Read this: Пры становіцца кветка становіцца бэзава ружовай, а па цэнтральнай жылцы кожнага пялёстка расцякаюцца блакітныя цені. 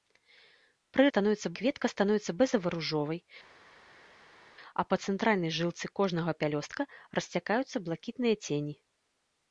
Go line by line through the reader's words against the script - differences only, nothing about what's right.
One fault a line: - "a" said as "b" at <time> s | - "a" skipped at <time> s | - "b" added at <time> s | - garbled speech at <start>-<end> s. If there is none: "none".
none